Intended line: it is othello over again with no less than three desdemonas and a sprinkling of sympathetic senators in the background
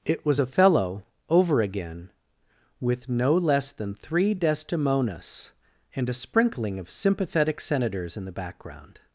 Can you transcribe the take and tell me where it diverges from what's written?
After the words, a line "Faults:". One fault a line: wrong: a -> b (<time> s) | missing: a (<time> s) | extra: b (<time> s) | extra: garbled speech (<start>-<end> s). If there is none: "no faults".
it was othello over again with no less than three desdemonas and a sprinkling of sympathetic senators in the background
Faults:
wrong: is -> was (0.2 s)